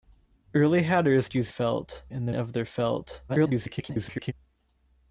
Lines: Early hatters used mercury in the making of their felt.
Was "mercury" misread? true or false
true